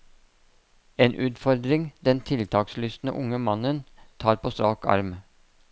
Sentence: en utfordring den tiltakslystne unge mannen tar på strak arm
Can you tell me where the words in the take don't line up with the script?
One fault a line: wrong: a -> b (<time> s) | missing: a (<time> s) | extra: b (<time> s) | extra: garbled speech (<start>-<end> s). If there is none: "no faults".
no faults